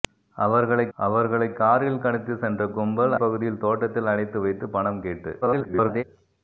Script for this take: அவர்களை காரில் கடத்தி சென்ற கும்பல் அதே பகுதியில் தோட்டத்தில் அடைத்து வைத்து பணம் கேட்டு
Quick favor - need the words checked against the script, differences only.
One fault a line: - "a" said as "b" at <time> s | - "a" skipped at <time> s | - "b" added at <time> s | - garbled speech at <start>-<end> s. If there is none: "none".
- "அவர்களை" added at 1.0 s
- "அதே" skipped at 3.1 s
- garbled speech at 5.4-6.0 s